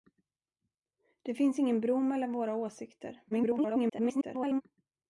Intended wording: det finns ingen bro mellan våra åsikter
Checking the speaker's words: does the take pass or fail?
fail